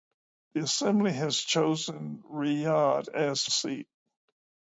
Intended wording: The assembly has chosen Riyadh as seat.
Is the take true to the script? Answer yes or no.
yes